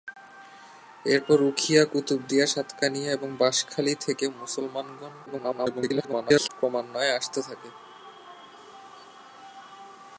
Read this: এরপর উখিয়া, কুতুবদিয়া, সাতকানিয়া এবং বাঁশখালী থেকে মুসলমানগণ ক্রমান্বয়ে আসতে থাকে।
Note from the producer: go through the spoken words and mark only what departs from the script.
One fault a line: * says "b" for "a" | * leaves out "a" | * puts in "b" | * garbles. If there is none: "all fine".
* garbles